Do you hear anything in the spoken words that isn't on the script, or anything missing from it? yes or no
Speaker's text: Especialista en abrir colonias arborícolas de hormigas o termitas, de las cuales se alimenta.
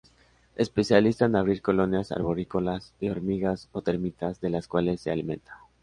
no